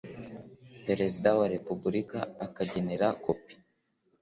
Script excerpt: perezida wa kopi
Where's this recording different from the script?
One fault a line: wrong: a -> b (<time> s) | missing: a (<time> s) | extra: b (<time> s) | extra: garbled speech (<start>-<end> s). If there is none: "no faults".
extra: repubulika akagenera (1.5 s)